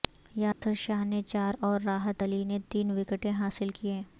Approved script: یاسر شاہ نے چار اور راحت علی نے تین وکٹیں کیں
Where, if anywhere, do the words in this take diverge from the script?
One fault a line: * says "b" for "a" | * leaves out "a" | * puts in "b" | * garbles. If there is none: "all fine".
* puts in "حاصل"